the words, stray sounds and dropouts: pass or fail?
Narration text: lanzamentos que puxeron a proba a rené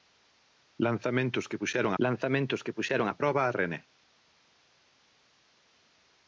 fail